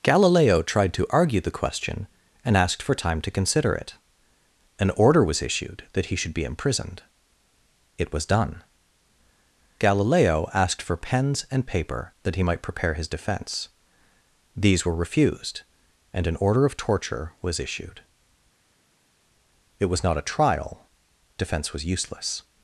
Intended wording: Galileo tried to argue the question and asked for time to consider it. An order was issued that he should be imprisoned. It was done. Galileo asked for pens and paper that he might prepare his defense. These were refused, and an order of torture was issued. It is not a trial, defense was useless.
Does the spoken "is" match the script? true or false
false